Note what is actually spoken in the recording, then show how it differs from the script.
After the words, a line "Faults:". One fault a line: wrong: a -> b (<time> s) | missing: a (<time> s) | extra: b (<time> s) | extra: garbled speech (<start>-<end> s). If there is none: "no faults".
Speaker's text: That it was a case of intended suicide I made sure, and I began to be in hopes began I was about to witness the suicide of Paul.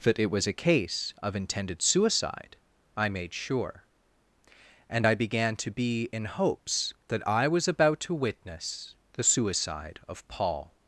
That it was a case of intended suicide I made sure, and I began to be in hopes that I was about to witness the suicide of Paul.
Faults:
wrong: began -> that (7.1 s)